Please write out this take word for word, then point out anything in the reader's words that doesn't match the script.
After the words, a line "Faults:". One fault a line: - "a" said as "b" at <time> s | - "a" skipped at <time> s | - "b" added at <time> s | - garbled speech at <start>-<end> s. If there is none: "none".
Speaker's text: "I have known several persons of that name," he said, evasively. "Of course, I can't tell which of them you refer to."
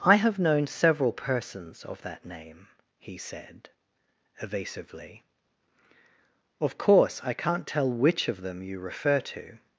"I have known several persons of that name," he said, evasively. "Of course, I can't tell which of them you refer to."
Faults:
none